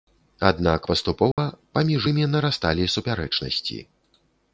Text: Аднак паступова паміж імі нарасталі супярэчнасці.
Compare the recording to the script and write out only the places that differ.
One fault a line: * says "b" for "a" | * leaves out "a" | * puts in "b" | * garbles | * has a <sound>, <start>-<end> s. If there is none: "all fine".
* has a dropout, 1.3-1.4 s